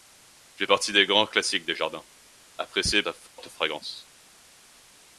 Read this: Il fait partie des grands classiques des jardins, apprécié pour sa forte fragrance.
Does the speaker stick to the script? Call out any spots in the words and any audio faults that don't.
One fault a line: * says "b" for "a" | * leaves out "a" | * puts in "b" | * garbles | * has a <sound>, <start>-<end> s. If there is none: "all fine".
* leaves out "pour"
* has a dropout, 3.3-3.4 s